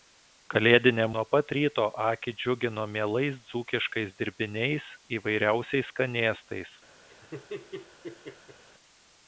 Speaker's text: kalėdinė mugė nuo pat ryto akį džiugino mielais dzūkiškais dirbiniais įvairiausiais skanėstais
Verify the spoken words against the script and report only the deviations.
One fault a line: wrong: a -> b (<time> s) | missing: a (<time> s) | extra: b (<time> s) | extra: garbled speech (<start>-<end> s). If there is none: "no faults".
missing: mugė (1.0 s)